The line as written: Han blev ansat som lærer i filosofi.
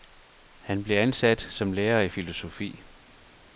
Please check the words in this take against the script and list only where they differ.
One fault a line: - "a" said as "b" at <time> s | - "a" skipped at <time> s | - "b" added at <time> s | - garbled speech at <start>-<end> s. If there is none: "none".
none